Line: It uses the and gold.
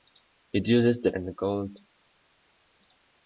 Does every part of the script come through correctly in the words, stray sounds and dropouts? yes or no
yes